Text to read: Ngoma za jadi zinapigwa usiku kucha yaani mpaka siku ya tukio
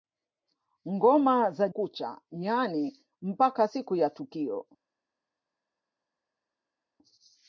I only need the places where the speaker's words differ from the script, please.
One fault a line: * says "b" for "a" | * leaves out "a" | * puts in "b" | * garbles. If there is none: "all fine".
* leaves out "jadi zinapigwa usiku"